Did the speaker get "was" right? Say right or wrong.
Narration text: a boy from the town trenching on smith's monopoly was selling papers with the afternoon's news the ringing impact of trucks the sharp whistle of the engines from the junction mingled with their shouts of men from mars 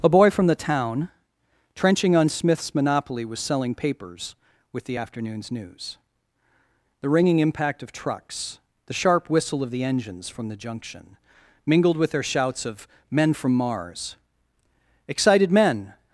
right